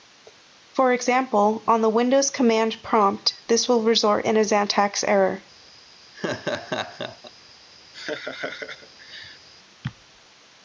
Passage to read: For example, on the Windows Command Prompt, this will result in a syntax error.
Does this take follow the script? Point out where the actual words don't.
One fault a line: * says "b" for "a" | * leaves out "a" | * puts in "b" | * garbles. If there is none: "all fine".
all fine